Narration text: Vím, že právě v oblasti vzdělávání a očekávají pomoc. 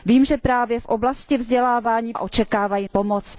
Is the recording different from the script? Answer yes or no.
no